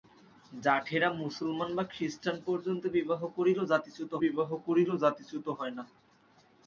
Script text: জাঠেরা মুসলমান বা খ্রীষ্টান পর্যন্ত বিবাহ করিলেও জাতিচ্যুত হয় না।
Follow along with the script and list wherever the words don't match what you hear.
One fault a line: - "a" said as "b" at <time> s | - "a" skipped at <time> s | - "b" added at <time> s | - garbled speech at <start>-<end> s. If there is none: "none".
- "বিবাহ করিলেও জাতিচ্যুত" added at 4.2 s